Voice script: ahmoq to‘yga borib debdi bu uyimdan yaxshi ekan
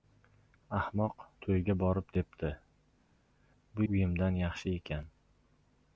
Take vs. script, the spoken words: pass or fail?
pass